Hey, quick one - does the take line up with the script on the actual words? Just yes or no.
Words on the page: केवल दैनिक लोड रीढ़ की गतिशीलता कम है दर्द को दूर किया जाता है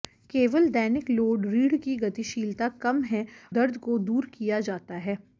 yes